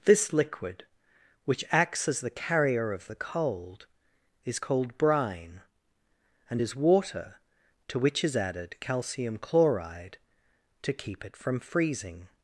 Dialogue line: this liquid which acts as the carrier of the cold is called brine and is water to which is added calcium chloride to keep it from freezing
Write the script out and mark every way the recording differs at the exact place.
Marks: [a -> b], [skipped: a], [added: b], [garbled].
this liquid which acts as the carrier of the cold is called brine and is water to which is added calcium chloride to keep it from freezing